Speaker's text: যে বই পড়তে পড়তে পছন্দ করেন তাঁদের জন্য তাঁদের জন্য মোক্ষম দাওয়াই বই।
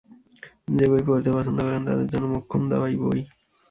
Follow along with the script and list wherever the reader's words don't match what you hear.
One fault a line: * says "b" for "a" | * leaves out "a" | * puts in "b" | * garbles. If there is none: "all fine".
* leaves out "পড়তে"
* leaves out "তাঁদের জন্য"